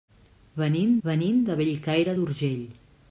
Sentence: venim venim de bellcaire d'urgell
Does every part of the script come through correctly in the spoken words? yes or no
yes